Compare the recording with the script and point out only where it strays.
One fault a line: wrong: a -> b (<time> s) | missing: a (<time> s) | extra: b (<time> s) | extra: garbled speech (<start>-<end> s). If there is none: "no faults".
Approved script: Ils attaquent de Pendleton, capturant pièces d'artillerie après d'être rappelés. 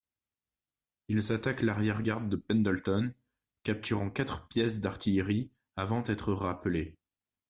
extra: l'arrière garde (1.6 s)
extra: quatre (4.1 s)
wrong: après -> avant (5.8 s)